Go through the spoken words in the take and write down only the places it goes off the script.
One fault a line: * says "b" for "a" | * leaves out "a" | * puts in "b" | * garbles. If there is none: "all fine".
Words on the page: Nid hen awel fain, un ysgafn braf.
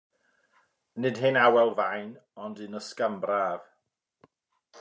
* puts in "ond"